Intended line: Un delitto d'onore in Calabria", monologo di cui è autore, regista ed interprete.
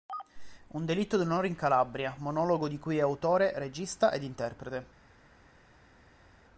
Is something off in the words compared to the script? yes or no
no